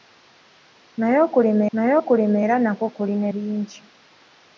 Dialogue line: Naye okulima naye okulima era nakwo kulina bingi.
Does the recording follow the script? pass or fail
pass